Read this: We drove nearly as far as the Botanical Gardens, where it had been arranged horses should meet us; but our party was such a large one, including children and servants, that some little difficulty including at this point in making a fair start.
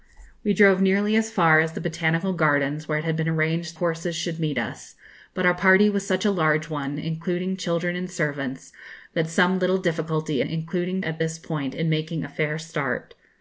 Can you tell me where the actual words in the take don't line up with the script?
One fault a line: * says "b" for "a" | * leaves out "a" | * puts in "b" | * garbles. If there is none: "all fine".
all fine